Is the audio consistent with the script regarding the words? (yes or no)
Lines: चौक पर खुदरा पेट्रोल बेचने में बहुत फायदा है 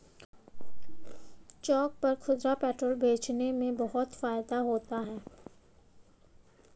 no